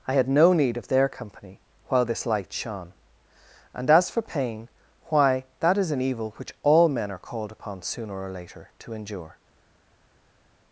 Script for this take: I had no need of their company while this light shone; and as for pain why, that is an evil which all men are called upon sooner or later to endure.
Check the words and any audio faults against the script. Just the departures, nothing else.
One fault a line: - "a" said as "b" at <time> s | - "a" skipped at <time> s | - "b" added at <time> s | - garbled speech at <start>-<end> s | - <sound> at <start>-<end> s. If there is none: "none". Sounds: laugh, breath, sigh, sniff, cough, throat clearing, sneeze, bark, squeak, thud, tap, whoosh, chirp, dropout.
none